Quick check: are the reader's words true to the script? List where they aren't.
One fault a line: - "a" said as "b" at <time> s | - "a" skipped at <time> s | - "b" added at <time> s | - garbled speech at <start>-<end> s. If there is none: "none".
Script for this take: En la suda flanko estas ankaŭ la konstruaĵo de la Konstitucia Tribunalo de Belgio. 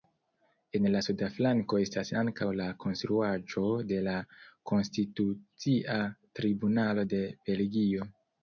none